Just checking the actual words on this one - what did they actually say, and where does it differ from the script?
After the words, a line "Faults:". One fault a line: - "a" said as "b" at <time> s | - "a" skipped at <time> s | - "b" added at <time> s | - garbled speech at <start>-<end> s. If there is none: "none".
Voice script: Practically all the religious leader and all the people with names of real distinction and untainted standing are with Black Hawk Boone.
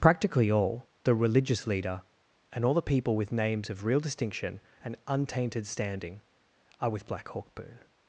Practically all the religious leader and all the people with names of real distinction and untainted standing are with Black Hawk Boone.
Faults:
none